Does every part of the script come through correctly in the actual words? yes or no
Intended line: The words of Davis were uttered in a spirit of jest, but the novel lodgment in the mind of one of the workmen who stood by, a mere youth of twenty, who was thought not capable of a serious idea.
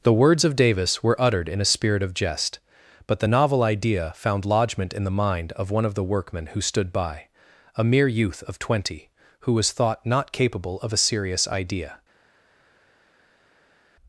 no